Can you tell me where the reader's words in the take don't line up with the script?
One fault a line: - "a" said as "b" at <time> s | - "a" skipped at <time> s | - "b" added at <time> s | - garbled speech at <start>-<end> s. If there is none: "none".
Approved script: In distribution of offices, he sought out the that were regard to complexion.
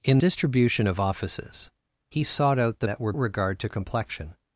none